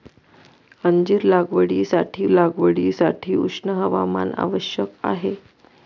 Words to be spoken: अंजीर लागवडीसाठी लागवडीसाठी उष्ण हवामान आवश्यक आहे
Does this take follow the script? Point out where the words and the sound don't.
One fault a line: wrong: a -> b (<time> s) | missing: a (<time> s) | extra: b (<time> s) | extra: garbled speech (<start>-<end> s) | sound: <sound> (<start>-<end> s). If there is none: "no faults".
no faults